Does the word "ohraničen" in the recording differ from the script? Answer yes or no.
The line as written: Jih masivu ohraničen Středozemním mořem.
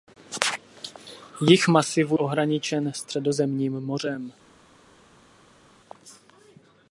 no